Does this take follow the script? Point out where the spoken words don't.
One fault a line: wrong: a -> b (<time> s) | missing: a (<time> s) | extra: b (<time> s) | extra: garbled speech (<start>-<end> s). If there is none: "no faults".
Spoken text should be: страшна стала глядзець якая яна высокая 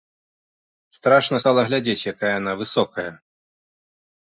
no faults